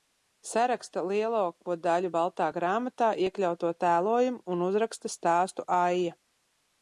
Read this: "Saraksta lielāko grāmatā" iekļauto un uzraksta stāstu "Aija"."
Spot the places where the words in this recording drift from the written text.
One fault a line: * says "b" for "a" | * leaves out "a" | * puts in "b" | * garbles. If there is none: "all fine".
* puts in "daļu Baltā"
* puts in "tēlojumu"